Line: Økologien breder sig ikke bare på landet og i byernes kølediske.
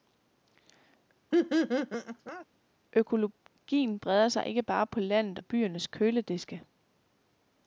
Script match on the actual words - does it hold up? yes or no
no